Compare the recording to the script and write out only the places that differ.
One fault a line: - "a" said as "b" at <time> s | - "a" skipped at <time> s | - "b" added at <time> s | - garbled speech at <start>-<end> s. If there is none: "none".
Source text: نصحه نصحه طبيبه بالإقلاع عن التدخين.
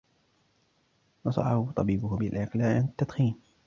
- "نصحه" skipped at 1.7 s